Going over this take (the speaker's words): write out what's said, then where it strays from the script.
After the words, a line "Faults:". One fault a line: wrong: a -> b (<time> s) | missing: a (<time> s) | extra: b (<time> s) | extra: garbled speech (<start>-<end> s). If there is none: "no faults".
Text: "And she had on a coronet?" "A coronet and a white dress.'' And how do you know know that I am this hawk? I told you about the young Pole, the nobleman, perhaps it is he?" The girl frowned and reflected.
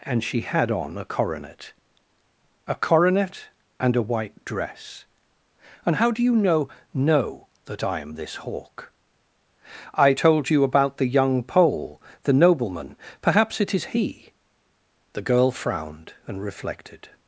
"And she had on a coronet?" "A coronet and a white dress.'' And how do you know know that I am this hawk? I told you about the young Pole, the nobleman, perhaps it is he?" The girl frowned and reflected.
Faults:
no faults